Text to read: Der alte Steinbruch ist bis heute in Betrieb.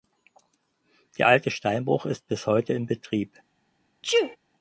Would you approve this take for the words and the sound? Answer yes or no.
no